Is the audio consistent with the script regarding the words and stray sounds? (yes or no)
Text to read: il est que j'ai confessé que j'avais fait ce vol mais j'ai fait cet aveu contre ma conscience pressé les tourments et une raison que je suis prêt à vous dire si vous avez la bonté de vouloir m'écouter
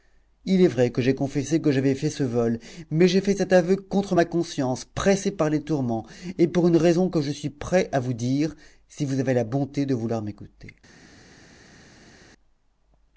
no